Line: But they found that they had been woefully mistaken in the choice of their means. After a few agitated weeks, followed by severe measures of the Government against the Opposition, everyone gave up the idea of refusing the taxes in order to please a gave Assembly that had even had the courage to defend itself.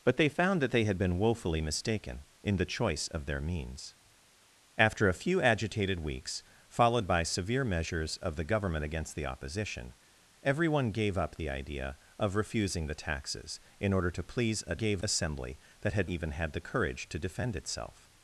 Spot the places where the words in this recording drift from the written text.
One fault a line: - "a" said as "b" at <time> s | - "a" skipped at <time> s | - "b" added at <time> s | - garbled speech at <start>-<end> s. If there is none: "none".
none